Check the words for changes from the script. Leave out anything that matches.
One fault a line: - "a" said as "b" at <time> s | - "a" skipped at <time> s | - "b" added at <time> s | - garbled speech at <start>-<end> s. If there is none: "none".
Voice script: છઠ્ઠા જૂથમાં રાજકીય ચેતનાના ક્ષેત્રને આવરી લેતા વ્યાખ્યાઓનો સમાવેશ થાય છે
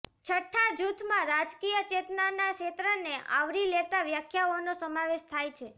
none